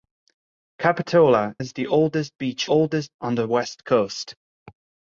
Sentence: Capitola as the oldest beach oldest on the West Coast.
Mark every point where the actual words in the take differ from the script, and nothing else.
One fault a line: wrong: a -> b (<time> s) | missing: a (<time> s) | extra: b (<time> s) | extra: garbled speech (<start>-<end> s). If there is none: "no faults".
no faults